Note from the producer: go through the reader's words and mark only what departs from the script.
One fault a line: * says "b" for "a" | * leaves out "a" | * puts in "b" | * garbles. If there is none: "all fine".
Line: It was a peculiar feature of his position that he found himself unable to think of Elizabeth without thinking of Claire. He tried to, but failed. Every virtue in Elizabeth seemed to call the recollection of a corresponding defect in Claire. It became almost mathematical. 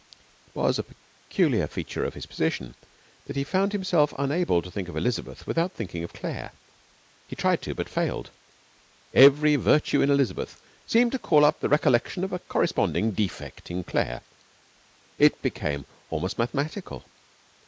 * puts in "up"